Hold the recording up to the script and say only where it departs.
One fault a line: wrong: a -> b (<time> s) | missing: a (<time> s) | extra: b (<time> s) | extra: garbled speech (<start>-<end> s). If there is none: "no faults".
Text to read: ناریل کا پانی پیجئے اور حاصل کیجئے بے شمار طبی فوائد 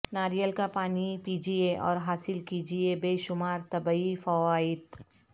no faults